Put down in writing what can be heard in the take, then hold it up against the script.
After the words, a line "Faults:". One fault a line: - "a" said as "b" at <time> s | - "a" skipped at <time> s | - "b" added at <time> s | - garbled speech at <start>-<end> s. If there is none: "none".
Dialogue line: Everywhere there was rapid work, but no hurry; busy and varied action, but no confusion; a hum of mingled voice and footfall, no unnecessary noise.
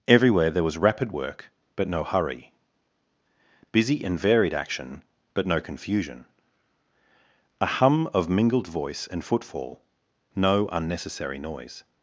Everywhere there was rapid work, but no hurry; busy and varied action, but no confusion; a hum of mingled voice and footfall, no unnecessary noise.
Faults:
none